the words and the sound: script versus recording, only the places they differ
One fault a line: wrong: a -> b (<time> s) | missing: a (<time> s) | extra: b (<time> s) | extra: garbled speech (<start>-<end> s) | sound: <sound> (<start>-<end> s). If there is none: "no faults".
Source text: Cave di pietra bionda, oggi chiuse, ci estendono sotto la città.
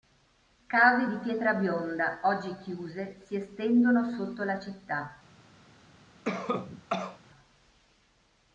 wrong: ci -> si (3.2 s)
sound: cough (6.3-7.2 s)